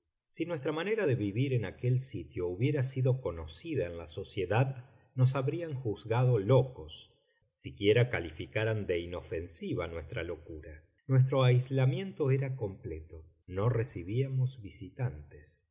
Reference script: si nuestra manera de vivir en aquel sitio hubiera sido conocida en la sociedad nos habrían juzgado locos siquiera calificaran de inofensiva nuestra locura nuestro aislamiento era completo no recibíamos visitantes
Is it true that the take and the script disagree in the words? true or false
false